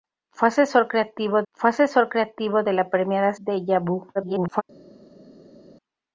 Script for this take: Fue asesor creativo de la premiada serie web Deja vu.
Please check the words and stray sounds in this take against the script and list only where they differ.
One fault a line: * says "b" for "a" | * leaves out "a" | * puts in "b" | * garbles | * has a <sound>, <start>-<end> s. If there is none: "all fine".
* puts in "fue asesor creativo"
* leaves out "serie web"
* garbles